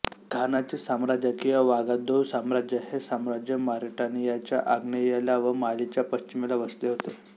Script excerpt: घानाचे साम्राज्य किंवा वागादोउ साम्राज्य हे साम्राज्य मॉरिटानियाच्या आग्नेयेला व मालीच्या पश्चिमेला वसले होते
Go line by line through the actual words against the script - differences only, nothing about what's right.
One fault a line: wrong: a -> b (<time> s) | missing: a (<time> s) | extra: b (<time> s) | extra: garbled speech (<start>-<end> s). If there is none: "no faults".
no faults